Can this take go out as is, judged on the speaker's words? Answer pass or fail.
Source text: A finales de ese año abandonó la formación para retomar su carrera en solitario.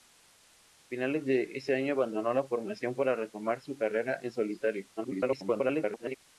fail